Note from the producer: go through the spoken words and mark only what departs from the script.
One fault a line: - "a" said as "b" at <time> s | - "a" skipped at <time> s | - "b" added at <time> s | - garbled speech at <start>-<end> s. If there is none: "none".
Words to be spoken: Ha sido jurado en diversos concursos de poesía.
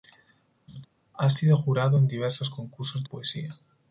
- "de" skipped at 3.0 s